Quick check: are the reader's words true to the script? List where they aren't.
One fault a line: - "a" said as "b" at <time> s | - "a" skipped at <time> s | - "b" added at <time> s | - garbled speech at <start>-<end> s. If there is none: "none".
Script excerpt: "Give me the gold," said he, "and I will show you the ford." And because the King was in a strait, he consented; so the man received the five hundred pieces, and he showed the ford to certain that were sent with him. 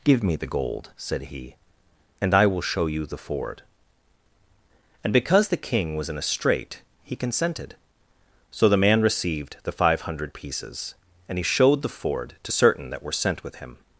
none